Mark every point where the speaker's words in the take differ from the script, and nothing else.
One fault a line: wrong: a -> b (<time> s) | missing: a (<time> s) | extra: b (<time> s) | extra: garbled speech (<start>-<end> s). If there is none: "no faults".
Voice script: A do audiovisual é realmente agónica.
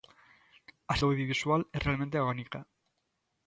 no faults